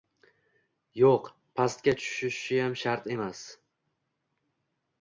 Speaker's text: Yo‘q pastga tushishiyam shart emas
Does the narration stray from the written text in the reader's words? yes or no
no